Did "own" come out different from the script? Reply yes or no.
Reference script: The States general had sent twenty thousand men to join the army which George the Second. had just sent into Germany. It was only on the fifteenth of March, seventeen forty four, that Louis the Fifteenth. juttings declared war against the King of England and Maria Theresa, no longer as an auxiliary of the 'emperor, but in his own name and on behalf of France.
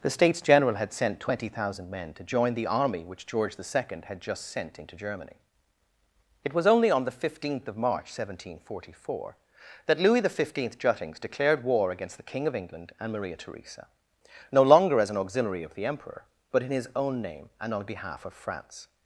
no